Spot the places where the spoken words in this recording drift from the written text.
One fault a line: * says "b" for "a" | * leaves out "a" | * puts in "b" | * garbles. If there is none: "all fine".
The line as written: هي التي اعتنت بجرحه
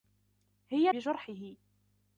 * leaves out "التي اعتنت"